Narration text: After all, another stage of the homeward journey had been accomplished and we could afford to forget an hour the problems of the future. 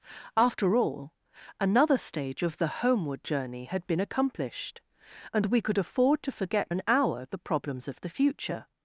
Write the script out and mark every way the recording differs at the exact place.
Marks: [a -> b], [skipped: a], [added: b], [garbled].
After all, another stage of the homeward journey had been accomplished and we could afford to forget an hour the problems of the future.